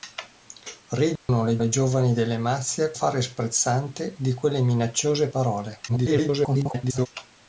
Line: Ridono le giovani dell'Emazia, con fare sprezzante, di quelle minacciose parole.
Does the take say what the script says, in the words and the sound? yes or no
no